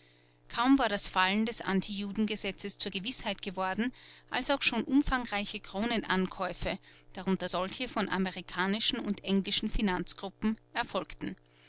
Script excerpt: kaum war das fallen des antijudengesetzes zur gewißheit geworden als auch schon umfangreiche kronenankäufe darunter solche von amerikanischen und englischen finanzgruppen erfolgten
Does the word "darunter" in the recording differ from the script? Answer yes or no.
no